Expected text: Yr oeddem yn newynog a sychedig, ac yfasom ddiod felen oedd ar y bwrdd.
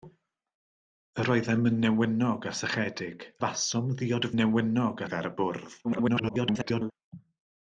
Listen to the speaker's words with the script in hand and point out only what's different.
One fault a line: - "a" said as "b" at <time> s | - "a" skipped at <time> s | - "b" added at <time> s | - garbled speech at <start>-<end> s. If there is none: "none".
- "ac" skipped at 3.3 s
- "felen" said as "newynog" at 4.4 s
- garbled speech at 5.8-6.9 s